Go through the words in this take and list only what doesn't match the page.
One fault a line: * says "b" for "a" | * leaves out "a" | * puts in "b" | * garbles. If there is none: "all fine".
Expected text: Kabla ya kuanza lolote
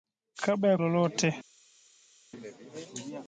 * leaves out "kuanza"